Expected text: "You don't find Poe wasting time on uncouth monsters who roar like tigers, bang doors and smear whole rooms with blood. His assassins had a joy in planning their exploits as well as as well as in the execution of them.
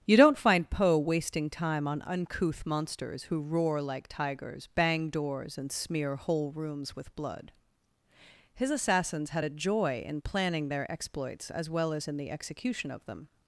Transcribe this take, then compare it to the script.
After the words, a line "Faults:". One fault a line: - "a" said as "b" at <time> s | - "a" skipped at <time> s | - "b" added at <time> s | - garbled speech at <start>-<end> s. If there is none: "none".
"You don't find Poe wasting time on uncouth monsters who roar like tigers, bang doors and smear whole rooms with blood. His assassins had a joy in planning their exploits as well as in the execution of them.
Faults:
- "as well as" skipped at 12.1 s